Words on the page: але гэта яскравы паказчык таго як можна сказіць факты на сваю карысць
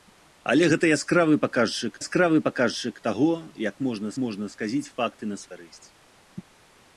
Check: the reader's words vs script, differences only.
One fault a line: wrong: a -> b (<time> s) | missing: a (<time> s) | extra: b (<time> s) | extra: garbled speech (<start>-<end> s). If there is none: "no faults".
extra: яскравы паказчык (2.0 s)
extra: можна (4.3 s)
missing: сваю (5.4 s)